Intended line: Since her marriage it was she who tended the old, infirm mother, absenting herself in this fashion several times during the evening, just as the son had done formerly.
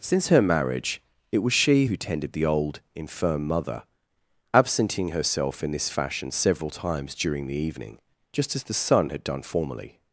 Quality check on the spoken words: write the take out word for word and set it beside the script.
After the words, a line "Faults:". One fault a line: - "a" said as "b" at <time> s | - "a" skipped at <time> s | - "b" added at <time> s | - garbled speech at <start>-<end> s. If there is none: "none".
Since her marriage it was she who tended the old, infirm mother, absenting herself in this fashion several times during the evening, just as the son had done formerly.
Faults:
none